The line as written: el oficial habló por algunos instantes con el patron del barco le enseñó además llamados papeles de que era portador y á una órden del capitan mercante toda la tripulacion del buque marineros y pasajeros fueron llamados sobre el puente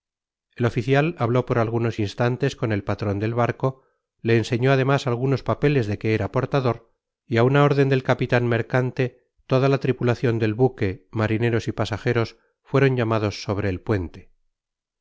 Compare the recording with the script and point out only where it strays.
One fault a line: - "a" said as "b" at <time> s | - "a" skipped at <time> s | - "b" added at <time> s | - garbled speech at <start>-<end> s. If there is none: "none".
- "llamados" said as "algunos" at 5.1 s